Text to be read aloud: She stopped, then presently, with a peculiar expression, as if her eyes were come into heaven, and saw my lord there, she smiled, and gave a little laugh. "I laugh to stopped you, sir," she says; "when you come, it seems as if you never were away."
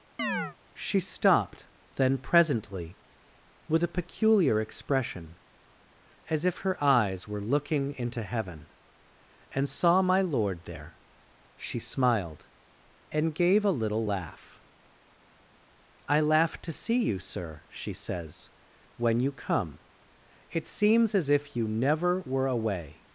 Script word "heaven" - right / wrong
right